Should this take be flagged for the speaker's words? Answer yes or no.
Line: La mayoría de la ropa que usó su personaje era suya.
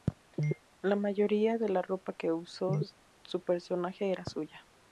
no